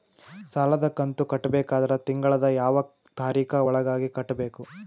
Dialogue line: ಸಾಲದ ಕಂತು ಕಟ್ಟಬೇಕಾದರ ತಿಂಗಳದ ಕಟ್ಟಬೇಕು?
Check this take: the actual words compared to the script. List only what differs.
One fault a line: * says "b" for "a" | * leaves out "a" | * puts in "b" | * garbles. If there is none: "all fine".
* puts in "ಯಾವ ತಾರೀಖ ಒಳಗಾಗಿ"